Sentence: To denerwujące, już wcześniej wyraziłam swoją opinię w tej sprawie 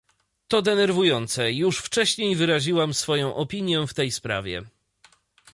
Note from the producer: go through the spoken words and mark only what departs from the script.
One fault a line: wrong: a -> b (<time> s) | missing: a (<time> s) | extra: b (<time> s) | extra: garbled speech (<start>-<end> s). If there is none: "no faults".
no faults